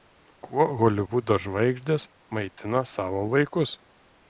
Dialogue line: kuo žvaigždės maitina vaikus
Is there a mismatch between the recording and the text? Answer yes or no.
yes